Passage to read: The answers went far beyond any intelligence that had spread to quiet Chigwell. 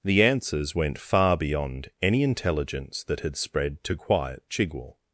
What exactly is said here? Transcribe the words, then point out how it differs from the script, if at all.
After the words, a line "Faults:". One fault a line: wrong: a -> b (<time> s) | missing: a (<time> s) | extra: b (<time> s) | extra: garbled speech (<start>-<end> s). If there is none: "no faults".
The answers went far beyond any intelligence that had spread to quiet Chigwell.
Faults:
no faults